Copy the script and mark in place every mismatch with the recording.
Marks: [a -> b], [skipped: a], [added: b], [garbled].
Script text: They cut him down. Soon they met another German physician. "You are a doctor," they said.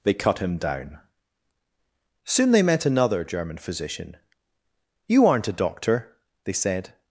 They cut him down. Soon they met another German physician. "You [are -> aren't] a doctor," they said.